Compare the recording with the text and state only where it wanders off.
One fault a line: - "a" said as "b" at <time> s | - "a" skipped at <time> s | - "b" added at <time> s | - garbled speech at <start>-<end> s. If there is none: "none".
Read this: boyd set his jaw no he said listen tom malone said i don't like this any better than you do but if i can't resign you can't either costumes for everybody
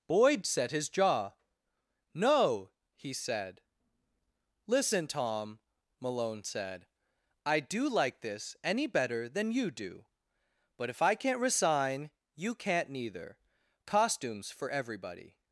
- "don't" said as "do" at 7.6 s
- "either" said as "neither" at 12.9 s